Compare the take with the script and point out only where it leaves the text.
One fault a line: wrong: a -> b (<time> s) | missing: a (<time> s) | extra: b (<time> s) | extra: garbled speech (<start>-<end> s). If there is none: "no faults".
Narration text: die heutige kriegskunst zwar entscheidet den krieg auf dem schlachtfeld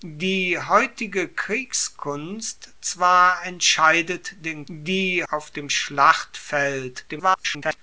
wrong: krieg -> die (4.7 s)
extra: garbled speech (7.1-7.8 s)